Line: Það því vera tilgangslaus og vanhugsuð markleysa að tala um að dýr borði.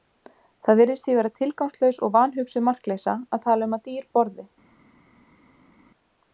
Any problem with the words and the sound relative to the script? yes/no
yes